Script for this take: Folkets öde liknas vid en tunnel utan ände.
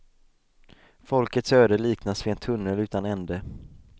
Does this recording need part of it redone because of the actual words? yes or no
no